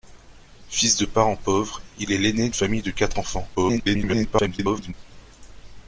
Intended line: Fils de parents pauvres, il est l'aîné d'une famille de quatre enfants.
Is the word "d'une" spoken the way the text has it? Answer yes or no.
no